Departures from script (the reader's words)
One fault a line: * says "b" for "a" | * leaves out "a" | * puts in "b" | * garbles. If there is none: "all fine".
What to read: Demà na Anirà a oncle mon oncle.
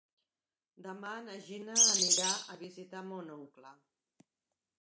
* puts in "Gina"
* says "visitar" for "oncle"